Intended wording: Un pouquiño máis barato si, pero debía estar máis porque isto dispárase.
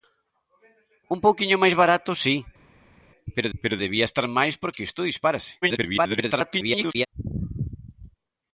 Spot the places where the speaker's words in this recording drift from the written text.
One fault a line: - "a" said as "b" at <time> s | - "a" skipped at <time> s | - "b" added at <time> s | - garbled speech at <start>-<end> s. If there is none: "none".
- "pero" added at 3.6 s
- garbled speech at 5.6-7.1 s